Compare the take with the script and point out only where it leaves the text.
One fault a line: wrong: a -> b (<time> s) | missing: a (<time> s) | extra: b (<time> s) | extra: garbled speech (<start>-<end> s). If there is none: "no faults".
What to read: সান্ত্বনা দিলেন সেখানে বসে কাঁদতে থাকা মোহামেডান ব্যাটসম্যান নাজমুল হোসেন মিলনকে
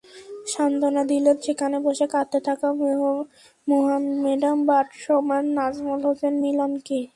no faults